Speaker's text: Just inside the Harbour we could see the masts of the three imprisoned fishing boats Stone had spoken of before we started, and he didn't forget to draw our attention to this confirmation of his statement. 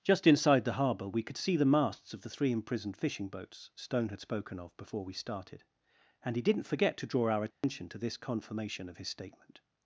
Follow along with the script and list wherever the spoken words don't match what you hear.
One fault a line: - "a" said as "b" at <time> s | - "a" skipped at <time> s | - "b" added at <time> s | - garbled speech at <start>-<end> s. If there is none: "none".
none